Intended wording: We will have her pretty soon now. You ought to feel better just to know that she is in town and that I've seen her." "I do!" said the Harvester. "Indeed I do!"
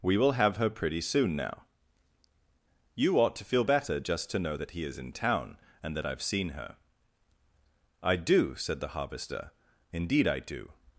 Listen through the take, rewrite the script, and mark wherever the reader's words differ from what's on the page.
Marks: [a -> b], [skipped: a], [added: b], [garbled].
We will have her pretty soon now. You ought to feel better just to know that [she -> he] is in town and that I've seen her." "I do!" said the Harvester. "Indeed I do!"